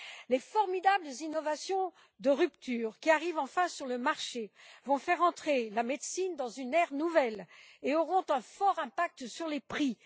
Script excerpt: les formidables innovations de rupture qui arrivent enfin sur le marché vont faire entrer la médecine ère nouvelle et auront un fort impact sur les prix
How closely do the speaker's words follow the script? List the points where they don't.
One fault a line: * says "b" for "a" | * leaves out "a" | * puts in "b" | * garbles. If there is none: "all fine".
* puts in "dans une"